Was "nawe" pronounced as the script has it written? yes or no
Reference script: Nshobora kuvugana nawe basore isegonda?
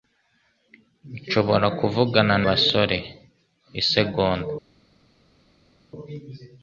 no